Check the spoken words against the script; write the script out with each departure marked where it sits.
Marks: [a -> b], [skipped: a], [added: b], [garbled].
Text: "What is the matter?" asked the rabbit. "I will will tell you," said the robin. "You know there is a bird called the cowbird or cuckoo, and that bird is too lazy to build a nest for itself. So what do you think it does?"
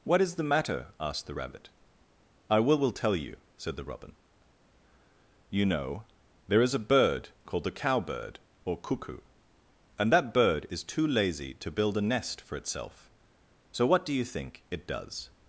"What is the matter?" asked the rabbit. "I will will tell you," said the robin. "You know there is a bird called the cowbird or cuckoo, and that bird is too lazy to build a nest for itself. So what do you think it does?"